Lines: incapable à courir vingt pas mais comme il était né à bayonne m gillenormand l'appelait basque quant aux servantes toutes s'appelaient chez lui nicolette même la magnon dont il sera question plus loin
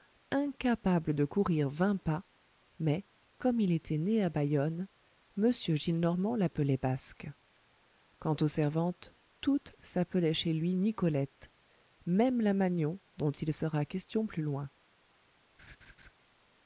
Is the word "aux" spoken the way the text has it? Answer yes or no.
yes